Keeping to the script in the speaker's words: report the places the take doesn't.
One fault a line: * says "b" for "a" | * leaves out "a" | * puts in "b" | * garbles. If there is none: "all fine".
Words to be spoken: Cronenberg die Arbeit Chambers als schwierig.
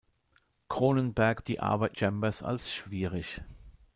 all fine